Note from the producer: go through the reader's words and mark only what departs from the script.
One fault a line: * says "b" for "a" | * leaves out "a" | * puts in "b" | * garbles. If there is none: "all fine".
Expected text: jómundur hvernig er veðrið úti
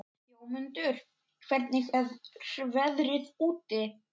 all fine